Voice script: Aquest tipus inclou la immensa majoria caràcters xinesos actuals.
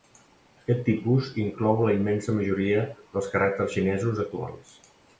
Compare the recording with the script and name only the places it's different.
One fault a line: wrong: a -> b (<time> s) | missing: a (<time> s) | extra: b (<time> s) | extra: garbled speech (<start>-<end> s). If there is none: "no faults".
extra: dels (3.0 s)